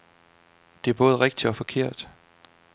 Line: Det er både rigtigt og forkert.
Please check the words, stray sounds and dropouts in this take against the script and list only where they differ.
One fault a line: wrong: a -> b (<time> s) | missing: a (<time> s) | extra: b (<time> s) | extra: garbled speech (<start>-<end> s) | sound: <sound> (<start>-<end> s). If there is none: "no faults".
no faults